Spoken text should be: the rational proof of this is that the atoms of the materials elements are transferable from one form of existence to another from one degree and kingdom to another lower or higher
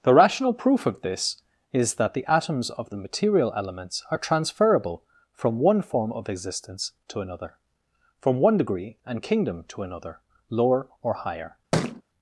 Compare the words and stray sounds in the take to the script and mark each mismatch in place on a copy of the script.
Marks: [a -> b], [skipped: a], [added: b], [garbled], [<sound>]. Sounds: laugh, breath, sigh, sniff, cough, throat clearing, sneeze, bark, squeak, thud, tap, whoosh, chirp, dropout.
the rational proof of this is that the atoms of the [materials -> material] elements are transferable from one form of existence to another from one degree and kingdom to another lower or higher [thud]